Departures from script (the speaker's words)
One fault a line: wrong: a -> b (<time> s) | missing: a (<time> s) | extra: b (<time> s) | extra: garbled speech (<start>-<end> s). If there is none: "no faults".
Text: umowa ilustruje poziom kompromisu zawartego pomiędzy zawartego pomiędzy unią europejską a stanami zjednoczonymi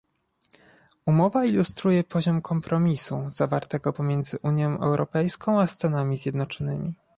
missing: zawartego pomiędzy (4.4 s)